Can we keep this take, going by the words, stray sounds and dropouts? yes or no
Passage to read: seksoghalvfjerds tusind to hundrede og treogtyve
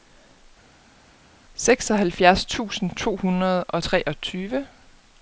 yes